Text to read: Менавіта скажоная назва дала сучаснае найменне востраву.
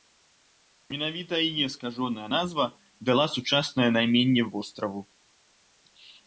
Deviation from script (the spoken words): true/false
true